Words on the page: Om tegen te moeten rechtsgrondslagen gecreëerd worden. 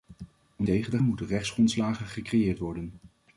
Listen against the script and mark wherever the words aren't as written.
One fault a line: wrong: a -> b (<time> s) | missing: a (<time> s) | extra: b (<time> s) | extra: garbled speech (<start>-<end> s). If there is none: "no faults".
no faults